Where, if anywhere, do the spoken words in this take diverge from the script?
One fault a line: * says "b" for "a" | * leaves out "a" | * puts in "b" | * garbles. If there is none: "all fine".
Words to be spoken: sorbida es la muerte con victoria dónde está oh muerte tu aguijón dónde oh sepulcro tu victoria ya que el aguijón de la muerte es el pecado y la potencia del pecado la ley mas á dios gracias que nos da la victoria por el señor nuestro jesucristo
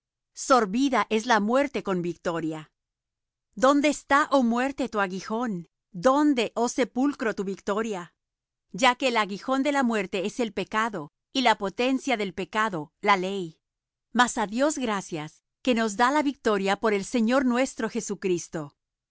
all fine